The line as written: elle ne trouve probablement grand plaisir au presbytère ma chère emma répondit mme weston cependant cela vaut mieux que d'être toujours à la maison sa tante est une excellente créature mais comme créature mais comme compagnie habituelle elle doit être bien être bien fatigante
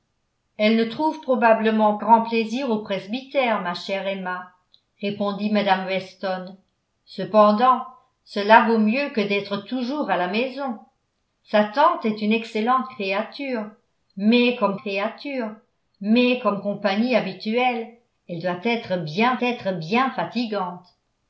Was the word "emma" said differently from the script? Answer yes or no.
no